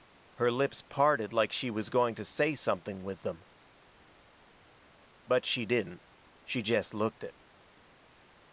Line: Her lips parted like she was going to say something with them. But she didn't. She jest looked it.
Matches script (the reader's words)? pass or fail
pass